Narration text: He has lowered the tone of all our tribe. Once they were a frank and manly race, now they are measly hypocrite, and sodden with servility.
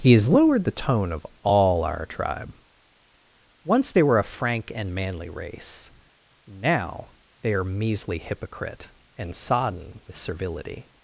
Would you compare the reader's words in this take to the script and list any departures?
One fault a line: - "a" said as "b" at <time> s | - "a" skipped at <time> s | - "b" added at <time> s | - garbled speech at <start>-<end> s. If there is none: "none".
none